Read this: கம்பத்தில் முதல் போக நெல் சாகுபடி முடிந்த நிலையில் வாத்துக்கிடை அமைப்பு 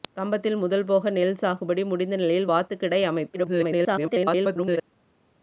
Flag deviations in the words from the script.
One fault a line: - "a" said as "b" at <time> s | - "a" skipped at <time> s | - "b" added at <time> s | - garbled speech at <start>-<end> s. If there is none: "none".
- garbled speech at 3.3-4.8 s